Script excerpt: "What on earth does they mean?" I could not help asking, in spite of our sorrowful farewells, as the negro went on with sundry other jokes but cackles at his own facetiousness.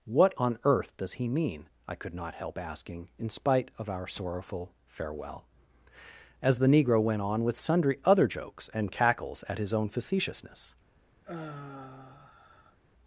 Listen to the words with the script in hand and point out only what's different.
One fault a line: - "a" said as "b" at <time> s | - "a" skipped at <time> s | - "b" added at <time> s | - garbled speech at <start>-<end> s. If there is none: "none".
- "they" said as "he" at 1.1 s
- "farewells" said as "farewell" at 4.9 s
- "but" said as "and" at 8.7 s